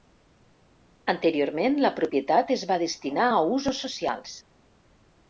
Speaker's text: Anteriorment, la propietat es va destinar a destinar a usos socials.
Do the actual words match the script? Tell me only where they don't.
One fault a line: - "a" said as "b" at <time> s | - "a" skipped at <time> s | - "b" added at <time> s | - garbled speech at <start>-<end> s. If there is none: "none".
- "destinar a" skipped at 3.4 s